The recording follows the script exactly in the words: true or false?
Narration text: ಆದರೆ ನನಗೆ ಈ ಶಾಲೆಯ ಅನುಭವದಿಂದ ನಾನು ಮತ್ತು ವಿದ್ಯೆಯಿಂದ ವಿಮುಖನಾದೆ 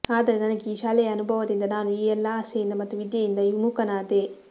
false